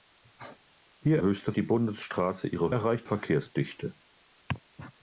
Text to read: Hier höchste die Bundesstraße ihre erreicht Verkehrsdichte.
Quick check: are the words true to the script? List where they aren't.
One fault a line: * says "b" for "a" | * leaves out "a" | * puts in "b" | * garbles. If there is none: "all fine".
all fine